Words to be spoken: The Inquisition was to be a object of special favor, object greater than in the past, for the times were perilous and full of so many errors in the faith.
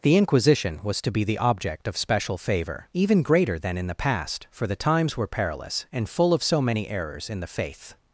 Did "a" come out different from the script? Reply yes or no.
yes